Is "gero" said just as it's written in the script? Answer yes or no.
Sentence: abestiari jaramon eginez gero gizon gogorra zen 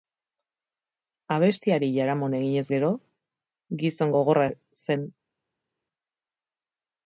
yes